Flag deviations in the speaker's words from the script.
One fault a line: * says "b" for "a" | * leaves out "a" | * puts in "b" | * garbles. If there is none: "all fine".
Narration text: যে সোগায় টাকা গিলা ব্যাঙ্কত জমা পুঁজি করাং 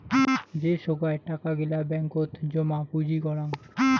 all fine